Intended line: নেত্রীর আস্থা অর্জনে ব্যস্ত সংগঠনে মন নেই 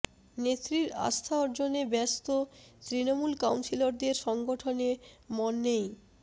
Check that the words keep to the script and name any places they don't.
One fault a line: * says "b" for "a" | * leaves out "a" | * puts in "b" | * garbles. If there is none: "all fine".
* puts in "তৃণমূল কাউন্সিলরদের"